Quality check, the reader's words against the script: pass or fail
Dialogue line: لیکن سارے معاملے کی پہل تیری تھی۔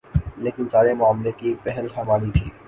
fail